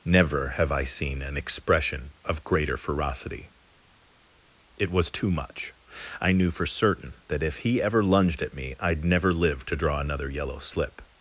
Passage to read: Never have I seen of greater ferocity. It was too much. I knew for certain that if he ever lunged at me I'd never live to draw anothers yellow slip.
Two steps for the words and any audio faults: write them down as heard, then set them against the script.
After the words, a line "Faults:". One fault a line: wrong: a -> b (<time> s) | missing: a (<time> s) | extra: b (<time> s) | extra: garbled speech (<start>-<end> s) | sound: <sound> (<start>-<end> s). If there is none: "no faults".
Never have I seen an expression of greater ferocity. It was too much. I knew for certain that if he ever lunged at me I'd never live to draw another yellow slip.
Faults:
extra: an expression (1.2 s)
wrong: anothers -> another (10.0 s)